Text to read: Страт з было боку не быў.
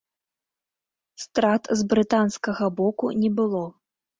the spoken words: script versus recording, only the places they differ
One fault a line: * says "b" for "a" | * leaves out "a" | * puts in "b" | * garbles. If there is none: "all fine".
* says "брытанскага" for "было"
* says "было" for "быў"